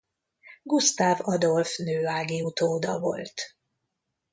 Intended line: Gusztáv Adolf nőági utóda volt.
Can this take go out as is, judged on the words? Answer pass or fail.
pass